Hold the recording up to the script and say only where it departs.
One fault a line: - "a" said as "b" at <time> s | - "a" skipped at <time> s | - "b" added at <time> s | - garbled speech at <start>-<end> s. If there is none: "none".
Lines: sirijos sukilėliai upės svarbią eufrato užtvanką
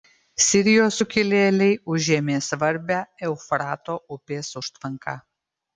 - "upės" said as "užėmė" at 2.0 s
- "upės" added at 4.2 s